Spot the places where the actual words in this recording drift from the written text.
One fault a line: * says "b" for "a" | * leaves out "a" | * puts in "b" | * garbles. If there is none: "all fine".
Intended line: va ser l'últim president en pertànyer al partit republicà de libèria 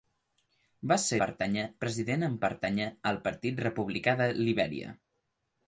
* says "pertànyer" for "l'últim"